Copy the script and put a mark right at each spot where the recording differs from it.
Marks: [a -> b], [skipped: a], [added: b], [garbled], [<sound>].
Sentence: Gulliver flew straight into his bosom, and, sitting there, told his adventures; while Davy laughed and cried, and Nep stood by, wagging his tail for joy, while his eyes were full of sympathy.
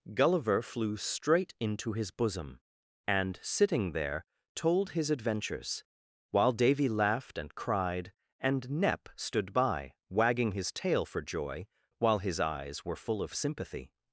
Gulliver flew straight into his bosom, and, sitting there, told his adventures; while Davy laughed and cried, and Nep stood by, wagging his tail for joy, while his eyes were full of sympathy.